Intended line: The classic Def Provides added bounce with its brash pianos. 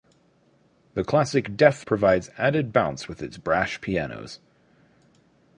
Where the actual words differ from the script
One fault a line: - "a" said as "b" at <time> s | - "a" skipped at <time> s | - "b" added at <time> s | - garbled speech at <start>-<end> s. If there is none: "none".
none